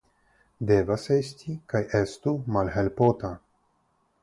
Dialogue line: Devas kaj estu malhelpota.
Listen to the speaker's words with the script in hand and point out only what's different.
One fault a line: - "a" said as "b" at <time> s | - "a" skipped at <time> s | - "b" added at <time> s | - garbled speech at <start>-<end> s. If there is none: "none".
- "esti" added at 1.1 s